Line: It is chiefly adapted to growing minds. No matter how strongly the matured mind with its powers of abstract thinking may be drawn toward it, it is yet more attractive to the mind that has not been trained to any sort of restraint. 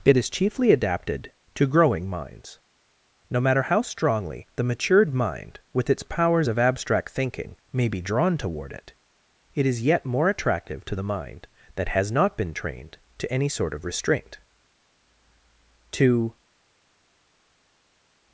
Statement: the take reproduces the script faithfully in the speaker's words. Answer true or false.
false